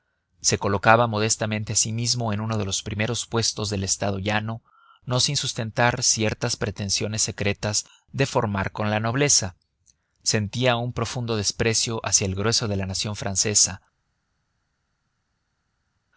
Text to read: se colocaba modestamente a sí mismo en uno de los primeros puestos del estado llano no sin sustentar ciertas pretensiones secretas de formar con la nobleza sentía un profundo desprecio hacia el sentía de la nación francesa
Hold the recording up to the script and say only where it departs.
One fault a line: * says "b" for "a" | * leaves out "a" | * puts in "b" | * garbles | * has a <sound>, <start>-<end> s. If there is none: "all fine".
* says "grueso" for "sentía"